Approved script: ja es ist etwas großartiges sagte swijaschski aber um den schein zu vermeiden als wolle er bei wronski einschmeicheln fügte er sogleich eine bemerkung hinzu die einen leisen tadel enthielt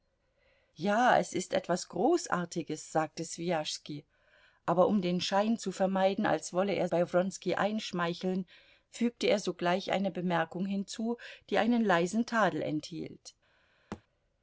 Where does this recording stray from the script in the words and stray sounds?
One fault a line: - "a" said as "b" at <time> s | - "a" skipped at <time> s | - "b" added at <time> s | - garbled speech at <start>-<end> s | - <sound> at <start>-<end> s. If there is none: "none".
- thud at 13.9-14.0 s